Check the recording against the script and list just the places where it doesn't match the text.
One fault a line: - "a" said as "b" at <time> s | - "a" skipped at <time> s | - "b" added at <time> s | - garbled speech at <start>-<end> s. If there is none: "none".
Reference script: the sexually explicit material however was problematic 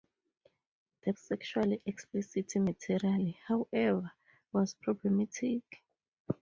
none